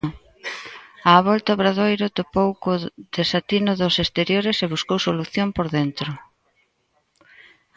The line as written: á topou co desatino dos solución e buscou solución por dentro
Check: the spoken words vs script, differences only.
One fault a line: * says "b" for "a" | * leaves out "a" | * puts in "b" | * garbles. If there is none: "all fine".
* puts in "volta obradoiro"
* says "exteriores" for "solución"